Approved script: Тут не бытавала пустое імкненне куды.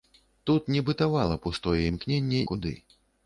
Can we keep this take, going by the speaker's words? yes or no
yes